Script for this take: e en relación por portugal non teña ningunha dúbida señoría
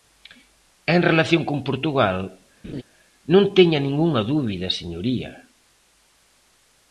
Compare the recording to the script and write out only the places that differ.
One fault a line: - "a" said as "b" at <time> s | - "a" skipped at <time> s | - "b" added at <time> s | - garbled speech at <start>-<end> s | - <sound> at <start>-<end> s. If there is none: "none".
- "por" said as "con" at 1.5 s
- laugh at 2.6-2.8 s